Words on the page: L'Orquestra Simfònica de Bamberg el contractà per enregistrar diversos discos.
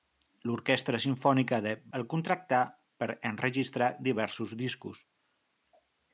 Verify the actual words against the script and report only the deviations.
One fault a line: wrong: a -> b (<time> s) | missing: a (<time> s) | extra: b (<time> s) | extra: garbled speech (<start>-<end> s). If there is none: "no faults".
missing: Bamberg (1.7 s)